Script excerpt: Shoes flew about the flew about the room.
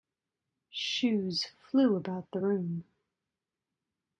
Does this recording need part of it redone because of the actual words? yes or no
yes